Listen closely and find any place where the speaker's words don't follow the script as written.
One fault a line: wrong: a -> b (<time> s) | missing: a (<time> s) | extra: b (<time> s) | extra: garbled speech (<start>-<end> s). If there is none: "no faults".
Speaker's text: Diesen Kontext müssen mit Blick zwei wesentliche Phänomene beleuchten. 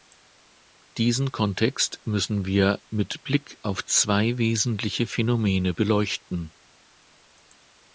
extra: wir (2.5 s)
extra: auf (3.6 s)